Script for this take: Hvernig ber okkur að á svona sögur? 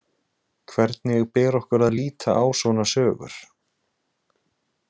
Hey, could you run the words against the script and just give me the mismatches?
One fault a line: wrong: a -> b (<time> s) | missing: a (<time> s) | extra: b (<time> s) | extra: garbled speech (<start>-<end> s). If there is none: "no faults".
extra: líta (2.0 s)